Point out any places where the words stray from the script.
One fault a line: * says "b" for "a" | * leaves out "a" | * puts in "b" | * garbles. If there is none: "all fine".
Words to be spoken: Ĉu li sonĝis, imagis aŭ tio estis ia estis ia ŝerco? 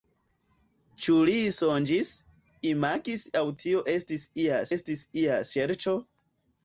all fine